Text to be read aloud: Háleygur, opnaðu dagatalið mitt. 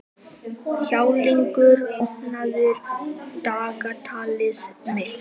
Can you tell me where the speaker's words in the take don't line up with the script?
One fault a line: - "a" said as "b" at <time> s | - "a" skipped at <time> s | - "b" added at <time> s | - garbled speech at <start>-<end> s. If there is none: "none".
none